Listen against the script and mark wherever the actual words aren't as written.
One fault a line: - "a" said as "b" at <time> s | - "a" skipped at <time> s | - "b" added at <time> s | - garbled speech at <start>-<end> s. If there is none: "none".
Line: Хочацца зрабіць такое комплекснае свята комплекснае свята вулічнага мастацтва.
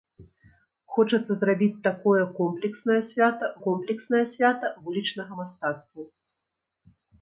none